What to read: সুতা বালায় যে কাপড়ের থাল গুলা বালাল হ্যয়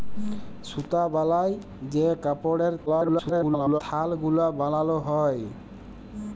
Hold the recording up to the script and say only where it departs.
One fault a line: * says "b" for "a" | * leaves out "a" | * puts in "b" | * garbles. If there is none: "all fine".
* garbles